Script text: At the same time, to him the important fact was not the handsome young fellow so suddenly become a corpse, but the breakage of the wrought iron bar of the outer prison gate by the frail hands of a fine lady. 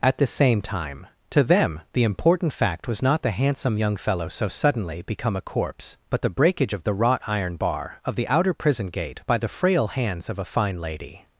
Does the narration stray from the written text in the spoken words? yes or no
yes